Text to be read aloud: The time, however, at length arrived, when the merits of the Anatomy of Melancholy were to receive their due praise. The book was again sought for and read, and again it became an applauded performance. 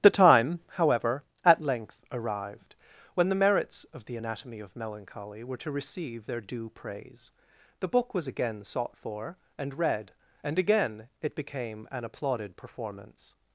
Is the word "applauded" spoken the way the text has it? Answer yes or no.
yes